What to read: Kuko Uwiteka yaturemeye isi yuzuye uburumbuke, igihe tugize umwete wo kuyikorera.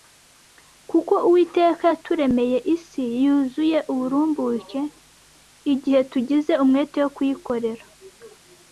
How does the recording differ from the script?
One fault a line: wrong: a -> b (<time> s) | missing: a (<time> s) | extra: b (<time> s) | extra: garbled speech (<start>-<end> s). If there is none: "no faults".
no faults